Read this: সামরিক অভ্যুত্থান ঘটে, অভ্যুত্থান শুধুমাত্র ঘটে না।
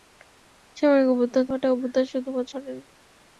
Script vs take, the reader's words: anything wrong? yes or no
no